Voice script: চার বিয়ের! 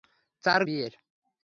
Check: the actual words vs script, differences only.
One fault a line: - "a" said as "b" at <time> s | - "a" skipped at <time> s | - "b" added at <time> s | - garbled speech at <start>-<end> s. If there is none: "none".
none